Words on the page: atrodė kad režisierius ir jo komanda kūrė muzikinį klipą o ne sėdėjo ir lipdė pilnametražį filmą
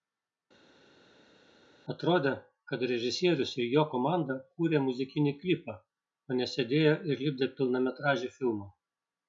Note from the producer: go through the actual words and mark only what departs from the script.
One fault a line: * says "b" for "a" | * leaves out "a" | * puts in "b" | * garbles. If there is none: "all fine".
all fine